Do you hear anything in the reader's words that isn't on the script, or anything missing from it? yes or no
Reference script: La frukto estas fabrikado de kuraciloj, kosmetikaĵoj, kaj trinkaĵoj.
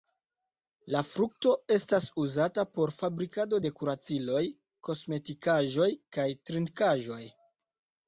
yes